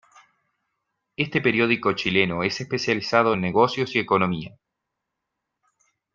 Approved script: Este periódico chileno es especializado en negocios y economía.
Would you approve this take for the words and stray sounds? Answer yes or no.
yes